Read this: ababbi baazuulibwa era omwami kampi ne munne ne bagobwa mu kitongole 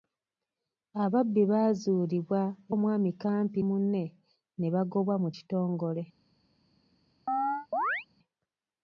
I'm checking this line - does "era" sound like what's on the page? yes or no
no